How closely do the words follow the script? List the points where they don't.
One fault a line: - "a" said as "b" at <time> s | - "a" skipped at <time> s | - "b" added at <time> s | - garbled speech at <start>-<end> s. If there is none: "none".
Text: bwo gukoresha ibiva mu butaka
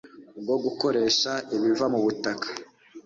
none